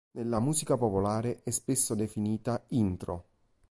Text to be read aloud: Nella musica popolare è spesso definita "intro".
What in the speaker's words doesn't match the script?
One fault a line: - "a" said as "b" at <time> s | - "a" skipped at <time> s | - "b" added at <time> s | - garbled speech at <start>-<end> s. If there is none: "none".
none